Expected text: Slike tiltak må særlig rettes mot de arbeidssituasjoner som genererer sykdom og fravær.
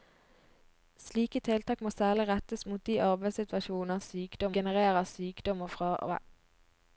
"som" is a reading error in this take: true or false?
true